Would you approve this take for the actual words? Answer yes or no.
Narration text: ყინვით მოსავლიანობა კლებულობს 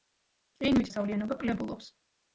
yes